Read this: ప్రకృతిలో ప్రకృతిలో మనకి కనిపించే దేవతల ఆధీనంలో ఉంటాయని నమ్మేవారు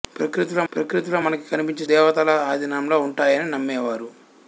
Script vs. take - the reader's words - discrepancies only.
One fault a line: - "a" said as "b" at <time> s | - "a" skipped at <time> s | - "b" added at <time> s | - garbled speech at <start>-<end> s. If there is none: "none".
none